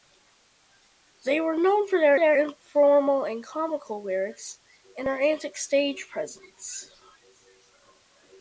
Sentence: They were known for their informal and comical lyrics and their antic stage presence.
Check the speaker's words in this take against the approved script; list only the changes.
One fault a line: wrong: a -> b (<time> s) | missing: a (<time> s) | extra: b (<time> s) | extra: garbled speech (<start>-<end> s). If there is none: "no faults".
extra: their (2.2 s)